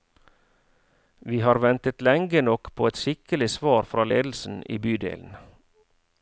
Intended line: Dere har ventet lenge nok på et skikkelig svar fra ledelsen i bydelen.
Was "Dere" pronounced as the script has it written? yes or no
no